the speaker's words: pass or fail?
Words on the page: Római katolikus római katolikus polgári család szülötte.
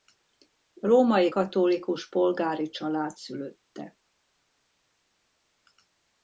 fail